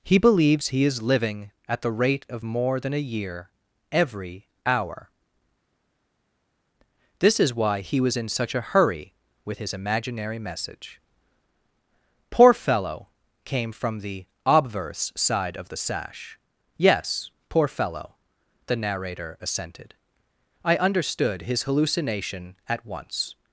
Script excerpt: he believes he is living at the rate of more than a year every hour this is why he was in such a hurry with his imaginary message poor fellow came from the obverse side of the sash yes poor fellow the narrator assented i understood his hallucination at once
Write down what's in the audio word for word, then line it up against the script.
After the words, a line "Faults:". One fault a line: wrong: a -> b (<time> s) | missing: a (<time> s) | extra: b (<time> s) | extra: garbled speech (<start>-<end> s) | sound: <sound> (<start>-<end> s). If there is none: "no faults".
he believes he is living at the rate of more than a year every hour this is why he was in such a hurry with his imaginary message poor fellow came from the obverse side of the sash yes poor fellow the narrator assented i understood his hallucination at once
Faults:
no faults